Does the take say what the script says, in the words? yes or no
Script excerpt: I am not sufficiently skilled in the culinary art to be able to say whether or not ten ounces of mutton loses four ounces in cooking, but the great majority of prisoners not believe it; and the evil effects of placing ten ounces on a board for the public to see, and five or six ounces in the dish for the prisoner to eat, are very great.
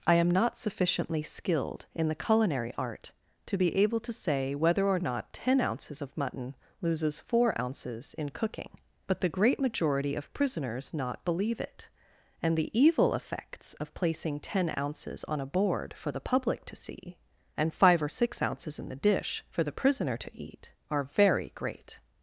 yes